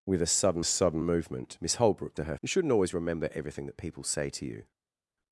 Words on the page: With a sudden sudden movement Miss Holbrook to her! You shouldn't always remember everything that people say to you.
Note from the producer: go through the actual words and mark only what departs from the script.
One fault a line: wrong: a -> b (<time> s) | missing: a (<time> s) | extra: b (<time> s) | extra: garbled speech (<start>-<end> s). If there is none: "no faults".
no faults